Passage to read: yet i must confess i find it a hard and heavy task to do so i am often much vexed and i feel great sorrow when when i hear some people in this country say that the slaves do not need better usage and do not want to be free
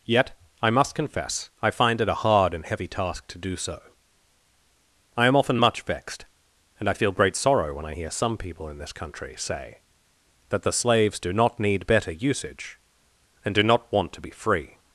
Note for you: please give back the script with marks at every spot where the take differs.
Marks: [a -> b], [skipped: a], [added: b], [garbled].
yet i must confess i find it a hard and heavy task to do so i am often much vexed and i feel great sorrow when [skipped: when] i hear some people in this country say that the slaves do not need better usage and do not want to be free